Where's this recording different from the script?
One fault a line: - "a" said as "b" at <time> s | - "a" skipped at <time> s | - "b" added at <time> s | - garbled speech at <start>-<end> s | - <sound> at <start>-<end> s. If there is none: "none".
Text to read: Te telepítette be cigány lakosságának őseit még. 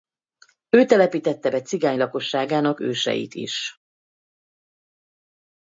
- "Te" said as "Ő" at 0.7 s
- "még" said as "is" at 3.3 s